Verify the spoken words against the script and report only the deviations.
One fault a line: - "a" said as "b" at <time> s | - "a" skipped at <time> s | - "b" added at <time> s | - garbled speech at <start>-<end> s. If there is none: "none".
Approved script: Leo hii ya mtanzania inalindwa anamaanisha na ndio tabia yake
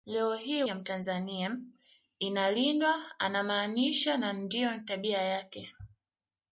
none